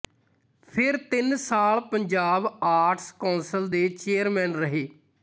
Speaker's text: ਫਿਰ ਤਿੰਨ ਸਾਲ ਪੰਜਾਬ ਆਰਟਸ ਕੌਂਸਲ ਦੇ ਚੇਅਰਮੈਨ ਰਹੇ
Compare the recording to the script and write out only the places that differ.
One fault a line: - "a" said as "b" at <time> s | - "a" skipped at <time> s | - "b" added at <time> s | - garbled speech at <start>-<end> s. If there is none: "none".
none